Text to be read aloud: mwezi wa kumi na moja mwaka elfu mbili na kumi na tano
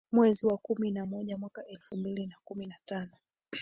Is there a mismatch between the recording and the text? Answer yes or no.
no